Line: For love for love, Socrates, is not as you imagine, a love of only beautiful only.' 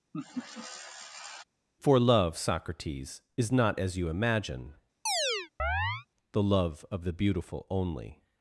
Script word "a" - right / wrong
wrong